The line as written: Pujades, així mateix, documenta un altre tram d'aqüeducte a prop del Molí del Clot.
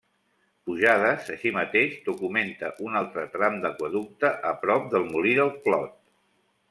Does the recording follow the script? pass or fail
pass